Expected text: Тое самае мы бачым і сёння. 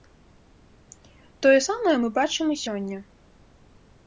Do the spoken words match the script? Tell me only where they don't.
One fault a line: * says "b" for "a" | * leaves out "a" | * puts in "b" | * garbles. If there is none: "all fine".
all fine